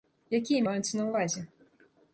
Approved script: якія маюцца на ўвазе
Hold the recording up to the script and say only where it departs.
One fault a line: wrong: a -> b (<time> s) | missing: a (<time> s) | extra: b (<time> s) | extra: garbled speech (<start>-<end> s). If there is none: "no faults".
no faults